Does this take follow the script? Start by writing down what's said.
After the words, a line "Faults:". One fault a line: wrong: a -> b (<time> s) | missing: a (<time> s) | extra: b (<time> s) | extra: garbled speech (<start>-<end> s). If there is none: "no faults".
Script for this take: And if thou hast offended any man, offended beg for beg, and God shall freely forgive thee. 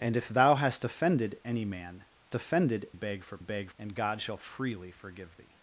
And if thou hast offended any man, offended beg for beg, and God shall freely forgive thee.
Faults:
no faults